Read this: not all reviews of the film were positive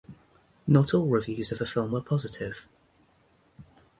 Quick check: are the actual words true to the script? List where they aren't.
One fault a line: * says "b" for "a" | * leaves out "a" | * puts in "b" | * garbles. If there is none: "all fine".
all fine